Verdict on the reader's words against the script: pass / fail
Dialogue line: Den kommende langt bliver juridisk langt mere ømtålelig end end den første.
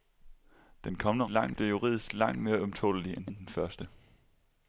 pass